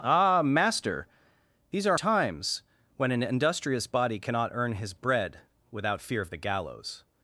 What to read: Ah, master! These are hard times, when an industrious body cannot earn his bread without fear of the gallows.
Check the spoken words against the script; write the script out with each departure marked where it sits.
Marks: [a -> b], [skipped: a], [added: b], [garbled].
Ah, master! These are [skipped: hard] times, when an industrious body cannot earn his bread without fear of the gallows.